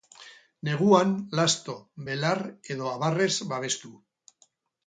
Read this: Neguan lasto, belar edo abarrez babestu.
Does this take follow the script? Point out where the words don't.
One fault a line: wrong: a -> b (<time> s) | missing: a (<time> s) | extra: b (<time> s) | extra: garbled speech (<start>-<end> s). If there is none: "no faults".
no faults